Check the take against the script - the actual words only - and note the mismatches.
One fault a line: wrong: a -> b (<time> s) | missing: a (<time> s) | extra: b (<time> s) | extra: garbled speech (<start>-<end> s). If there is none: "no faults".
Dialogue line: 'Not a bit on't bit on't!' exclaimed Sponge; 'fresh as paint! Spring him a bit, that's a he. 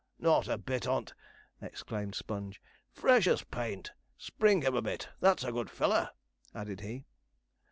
missing: bit on't (1.1 s)
extra: good fellow added (5.5 s)